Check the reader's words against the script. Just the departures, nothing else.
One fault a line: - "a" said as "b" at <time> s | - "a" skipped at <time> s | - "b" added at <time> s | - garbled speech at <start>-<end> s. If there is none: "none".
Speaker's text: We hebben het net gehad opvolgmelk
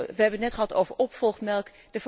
- "over" added at 0.7 s